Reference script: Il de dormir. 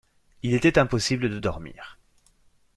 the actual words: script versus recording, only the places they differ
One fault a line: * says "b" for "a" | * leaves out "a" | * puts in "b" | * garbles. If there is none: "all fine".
* puts in "était impossible"